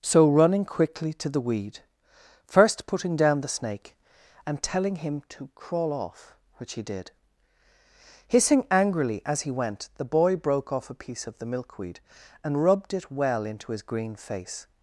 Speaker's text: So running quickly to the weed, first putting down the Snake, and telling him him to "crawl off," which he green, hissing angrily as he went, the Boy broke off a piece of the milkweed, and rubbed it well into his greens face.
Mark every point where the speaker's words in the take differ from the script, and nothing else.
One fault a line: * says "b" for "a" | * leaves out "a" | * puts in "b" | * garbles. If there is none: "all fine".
* leaves out "him"
* says "did" for "green"
* says "green" for "greens"